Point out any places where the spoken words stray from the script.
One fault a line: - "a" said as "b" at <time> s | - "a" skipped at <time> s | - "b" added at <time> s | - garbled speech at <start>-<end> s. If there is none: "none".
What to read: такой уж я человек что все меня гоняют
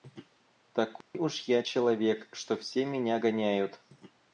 none